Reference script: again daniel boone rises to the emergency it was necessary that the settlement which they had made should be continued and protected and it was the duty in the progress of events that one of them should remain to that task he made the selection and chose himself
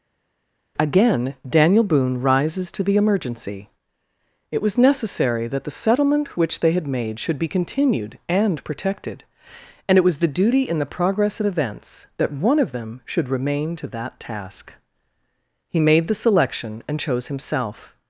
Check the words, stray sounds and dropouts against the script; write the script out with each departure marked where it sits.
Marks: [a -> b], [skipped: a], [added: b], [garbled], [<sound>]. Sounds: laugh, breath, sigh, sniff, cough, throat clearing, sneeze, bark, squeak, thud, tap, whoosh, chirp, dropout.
again daniel boone rises to the emergency it was necessary that the settlement which they had made should be continued and protected and it was the duty in the progress of events that one of them should remain to that task he made the selection and chose himself